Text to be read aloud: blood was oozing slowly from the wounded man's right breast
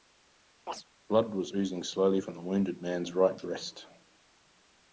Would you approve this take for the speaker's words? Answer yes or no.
yes